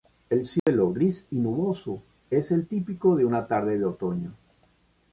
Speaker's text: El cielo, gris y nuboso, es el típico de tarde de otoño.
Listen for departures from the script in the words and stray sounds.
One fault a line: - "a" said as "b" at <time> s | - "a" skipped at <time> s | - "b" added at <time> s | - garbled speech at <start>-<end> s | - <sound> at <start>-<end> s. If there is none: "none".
- dropout at 0.6-0.7 s
- "una" added at 3.3 s